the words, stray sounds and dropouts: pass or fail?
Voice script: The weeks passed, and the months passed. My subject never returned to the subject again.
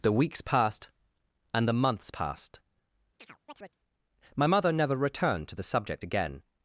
fail